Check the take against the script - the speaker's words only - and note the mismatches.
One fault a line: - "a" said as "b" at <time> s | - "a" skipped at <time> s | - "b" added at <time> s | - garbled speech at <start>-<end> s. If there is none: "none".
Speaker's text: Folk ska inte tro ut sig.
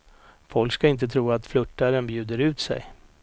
- "att flörtaren bjuder" added at 1.3 s